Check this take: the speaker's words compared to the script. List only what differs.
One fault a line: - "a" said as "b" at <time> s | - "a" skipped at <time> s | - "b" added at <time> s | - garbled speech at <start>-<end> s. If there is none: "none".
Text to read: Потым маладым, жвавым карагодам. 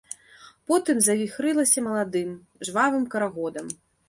- "завіхрылася" added at 1.1 s